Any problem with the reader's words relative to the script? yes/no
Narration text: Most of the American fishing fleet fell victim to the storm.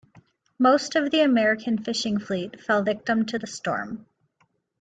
no